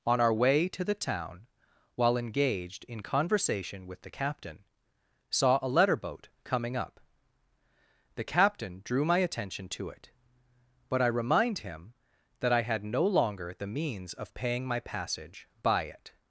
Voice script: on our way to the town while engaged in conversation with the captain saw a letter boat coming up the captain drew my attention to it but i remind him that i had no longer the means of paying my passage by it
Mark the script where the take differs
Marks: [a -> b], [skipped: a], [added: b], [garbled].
on our way to the town while engaged in conversation with the captain saw a letter boat coming up the captain drew my attention to it but i remind him that i had no longer the means of paying my passage by it